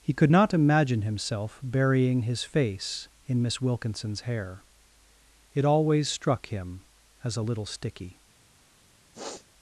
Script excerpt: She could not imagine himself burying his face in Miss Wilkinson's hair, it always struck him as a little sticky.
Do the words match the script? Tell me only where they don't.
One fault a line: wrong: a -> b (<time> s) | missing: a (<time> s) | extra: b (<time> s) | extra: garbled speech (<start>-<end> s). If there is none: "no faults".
wrong: She -> He (0.0 s)